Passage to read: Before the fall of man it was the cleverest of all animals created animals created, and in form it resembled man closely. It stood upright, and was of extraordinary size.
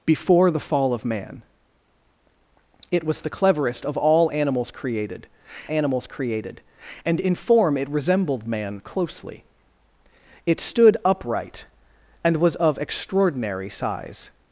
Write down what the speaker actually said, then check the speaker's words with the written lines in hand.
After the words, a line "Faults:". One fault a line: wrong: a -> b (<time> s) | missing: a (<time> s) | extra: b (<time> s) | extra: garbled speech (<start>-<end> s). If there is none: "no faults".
Before the fall of man it was the cleverest of all animals created animals created, and in form it resembled man closely. It stood upright, and was of extraordinary size.
Faults:
no faults